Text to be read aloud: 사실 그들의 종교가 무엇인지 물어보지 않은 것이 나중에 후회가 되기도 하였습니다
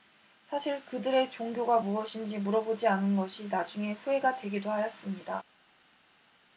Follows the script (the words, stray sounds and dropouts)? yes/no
yes